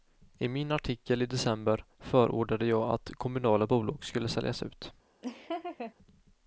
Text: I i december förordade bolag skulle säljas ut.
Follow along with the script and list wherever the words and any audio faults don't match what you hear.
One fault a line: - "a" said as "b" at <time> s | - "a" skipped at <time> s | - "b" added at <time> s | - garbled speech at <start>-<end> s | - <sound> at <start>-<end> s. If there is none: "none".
- "min artikel" added at 0.5 s
- "jag att kommunala" added at 2.6 s
- laugh at 5.2-5.9 s